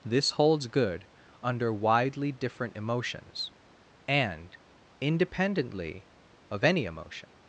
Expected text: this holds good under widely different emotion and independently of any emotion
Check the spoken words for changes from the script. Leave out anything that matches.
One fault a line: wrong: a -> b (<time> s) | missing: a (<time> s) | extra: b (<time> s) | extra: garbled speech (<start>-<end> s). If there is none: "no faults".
wrong: emotion -> emotions (2.8 s)